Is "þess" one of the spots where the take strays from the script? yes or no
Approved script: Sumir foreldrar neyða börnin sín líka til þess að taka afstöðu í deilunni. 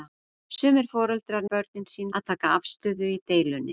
yes